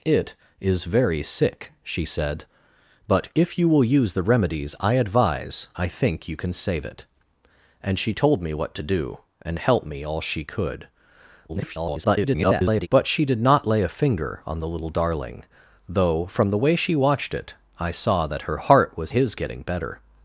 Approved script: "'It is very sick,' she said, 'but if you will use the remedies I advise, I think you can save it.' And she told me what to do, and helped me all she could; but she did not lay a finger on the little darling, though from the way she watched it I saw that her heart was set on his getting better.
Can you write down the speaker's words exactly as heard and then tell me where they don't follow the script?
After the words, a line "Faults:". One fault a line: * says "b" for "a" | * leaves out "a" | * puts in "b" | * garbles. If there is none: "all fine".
"'It is very sick,' she said, 'but if you will use the remedies I advise, I think you can save it.' And she told me what to do, and helped me all she could; [garbled] but she did not lay a finger on the little darling, though from the way she watched it I saw that her heart was his getting better.
Faults:
* garbles
* leaves out "set on"